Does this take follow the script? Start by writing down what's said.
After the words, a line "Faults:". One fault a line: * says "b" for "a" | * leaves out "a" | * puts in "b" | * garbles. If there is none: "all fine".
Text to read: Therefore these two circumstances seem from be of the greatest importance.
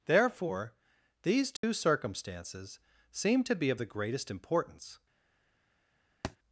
Therefore these two circumstances seem to be of the greatest importance.
Faults:
* says "to" for "from"